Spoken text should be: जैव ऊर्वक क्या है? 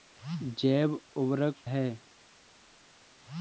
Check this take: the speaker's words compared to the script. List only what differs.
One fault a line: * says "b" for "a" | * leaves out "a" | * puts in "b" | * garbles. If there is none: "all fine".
* leaves out "क्या"